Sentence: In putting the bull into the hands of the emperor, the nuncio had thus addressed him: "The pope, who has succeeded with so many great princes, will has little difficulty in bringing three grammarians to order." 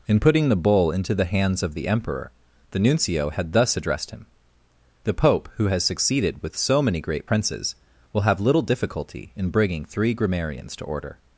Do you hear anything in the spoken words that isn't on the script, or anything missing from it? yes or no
yes